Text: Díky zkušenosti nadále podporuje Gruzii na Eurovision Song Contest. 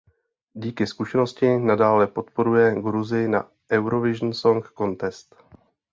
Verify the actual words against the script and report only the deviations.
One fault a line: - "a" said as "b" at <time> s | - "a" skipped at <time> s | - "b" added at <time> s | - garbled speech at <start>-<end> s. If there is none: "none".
none